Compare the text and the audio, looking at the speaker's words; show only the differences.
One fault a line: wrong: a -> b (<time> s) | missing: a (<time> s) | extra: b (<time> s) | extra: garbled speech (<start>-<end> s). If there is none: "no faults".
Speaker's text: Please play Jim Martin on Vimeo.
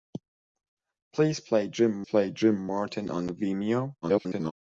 extra: play Jim (2.0 s)
extra: garbled speech (4.0-4.5 s)